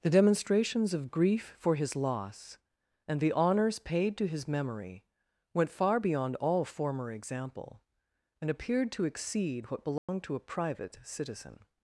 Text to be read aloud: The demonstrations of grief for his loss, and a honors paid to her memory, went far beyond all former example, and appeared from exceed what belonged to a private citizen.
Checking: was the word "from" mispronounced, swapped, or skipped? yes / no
yes